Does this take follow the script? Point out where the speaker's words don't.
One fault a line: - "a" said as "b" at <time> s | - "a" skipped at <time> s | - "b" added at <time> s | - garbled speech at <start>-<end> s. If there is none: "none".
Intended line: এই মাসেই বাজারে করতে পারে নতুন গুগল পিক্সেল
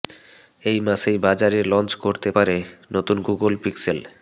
- "লঞ্চ" added at 1.6 s